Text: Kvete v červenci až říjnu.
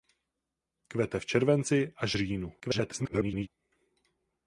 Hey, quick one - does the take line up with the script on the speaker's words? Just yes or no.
no